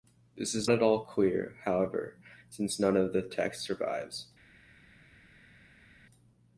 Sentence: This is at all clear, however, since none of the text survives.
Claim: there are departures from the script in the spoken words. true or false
false